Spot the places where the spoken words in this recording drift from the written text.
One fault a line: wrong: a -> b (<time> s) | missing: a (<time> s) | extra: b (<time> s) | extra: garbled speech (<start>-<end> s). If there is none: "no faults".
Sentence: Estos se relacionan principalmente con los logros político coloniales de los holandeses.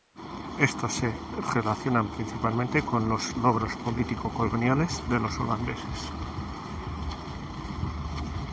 no faults